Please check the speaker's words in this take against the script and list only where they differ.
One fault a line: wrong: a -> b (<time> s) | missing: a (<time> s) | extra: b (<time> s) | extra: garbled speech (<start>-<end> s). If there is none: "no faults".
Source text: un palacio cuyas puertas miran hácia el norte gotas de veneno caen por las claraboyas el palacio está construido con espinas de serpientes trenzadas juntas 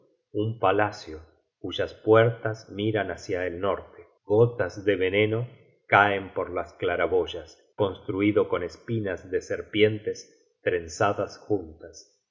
missing: el palacio está (7.6 s)